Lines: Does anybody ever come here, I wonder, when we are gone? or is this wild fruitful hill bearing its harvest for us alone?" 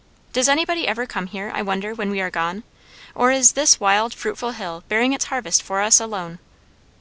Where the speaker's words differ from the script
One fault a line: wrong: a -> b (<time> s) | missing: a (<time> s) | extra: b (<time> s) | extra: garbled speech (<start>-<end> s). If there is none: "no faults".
no faults